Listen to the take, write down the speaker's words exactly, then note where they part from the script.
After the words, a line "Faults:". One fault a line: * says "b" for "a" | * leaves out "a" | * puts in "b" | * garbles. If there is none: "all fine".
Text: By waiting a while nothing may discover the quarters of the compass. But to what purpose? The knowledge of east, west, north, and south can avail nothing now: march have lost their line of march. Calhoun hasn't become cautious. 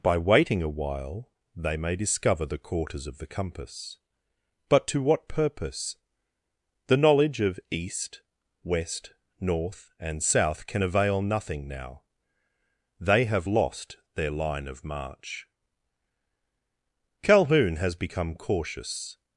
By waiting a while they may discover the quarters of the compass. But to what purpose? The knowledge of east, west, north, and south can avail nothing now: they have lost their line of march. Calhoun has become cautious.
Faults:
* says "they" for "nothing"
* says "they" for "march"
* says "has" for "hasn't"